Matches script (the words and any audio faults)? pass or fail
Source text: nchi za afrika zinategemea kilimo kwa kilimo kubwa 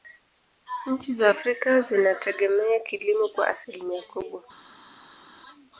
fail